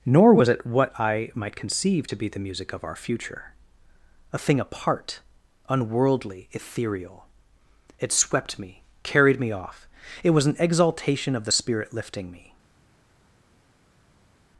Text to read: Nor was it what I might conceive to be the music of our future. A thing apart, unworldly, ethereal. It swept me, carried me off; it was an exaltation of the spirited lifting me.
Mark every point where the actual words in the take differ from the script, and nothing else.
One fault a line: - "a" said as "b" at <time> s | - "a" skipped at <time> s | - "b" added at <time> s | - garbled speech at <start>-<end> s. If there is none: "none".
- "spirited" said as "spirit" at 11.5 s